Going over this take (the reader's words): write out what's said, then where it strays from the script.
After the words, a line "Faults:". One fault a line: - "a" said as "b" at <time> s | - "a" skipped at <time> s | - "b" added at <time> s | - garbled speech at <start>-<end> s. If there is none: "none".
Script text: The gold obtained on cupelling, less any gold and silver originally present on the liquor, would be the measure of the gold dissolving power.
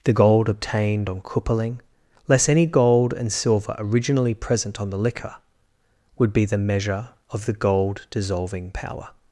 The gold obtained on cupelling, less any gold and silver originally present on the liquor, would be the measure of the gold dissolving power.
Faults:
none